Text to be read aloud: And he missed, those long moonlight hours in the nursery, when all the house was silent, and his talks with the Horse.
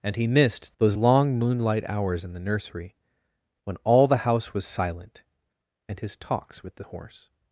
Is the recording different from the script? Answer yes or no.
no